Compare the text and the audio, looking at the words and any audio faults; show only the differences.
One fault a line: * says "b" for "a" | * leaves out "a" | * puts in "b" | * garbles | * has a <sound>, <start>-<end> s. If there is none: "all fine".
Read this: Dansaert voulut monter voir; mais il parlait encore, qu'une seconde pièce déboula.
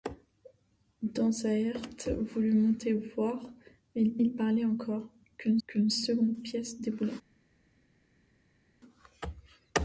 * puts in "il"
* puts in "qu'une"